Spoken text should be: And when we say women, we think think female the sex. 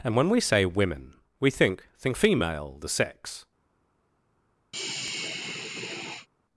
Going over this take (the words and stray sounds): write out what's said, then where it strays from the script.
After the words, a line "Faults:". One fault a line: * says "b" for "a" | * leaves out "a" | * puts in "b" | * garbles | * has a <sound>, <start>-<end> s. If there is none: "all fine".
And when we say women, we think think female the sex.
Faults:
* has a sigh, 4.7-6.3 s